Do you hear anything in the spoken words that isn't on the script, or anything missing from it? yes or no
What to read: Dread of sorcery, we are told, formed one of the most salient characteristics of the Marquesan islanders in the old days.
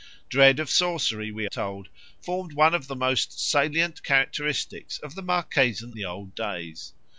yes